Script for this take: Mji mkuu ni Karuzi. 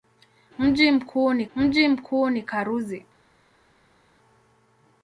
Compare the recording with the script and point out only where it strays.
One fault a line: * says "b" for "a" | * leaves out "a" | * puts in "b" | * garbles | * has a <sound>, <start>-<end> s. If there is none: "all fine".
* puts in "mji mkuu ni"